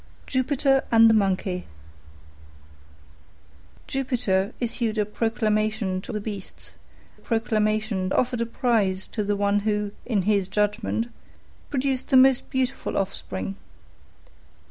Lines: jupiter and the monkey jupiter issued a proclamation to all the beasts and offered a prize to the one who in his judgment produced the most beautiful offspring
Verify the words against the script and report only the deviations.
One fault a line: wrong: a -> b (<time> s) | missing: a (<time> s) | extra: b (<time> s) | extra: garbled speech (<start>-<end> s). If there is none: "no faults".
missing: all (6.1 s)
wrong: and -> proclamation (7.1 s)